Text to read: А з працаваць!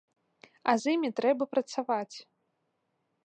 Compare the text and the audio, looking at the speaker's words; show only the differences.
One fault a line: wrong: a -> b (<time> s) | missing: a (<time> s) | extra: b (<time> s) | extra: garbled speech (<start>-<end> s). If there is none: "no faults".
extra: імі трэба (1.0 s)